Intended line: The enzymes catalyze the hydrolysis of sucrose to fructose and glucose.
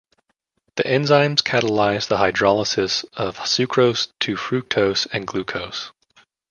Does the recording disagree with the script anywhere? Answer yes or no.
no